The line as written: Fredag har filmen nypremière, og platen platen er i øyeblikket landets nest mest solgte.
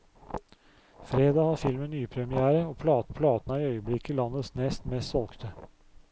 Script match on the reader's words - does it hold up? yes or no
yes